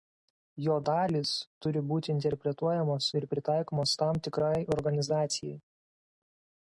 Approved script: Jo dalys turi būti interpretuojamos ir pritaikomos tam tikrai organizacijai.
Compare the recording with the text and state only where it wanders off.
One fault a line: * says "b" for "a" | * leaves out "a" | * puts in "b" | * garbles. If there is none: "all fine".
all fine